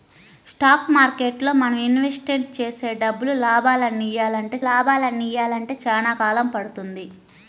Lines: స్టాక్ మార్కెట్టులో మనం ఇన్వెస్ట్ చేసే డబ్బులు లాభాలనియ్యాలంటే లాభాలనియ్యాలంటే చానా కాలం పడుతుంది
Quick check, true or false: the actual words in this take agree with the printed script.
true